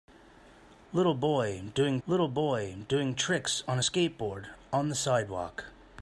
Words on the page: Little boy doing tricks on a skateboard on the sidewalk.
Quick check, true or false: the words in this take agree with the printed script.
false